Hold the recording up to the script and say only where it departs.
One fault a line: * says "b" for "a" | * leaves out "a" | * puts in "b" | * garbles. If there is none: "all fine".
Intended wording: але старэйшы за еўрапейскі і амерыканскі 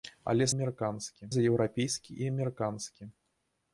* says "амерыканскі" for "старэйшы"